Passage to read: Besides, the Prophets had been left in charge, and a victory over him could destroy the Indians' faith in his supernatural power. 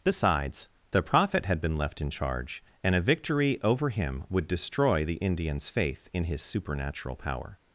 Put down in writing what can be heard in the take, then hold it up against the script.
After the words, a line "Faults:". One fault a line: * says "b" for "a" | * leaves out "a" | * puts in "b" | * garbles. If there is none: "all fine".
Besides, the Prophet had been left in charge, and a victory over him would destroy the Indians' faith in his supernatural power.
Faults:
* says "Prophet" for "Prophets"
* says "would" for "could"